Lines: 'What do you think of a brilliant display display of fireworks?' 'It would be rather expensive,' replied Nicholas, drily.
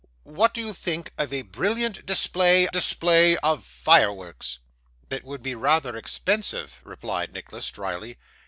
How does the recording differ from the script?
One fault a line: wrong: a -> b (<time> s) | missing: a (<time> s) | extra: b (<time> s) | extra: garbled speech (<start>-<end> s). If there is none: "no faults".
no faults